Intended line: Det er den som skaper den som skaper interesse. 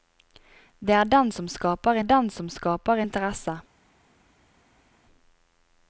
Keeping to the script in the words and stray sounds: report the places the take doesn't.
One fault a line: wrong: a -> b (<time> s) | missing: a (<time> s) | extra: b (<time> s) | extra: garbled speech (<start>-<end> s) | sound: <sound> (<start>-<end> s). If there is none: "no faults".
no faults